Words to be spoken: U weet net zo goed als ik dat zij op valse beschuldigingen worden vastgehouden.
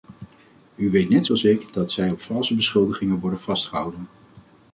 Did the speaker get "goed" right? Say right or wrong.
wrong